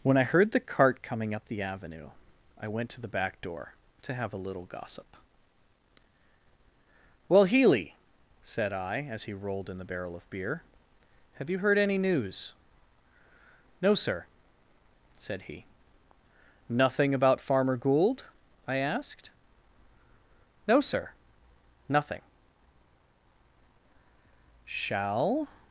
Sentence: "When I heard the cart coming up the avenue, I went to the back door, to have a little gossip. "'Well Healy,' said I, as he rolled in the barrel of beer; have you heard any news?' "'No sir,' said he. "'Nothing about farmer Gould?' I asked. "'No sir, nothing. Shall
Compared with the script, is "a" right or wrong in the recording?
right